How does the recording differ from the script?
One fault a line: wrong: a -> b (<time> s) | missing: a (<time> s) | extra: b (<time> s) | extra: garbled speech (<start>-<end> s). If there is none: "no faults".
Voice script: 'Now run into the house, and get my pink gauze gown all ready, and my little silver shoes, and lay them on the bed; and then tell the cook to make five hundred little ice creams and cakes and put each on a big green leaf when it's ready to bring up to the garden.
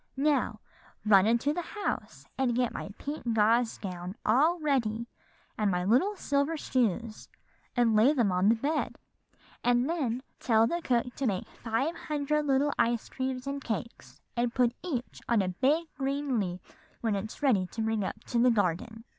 no faults